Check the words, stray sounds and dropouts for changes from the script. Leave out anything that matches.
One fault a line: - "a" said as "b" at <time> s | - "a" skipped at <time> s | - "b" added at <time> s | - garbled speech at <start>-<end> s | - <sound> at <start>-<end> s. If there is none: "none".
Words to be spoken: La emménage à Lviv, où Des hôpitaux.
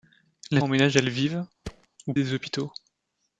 - thud at 1.6-1.9 s